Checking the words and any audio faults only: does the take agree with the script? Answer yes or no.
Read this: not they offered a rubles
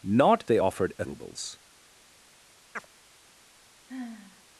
no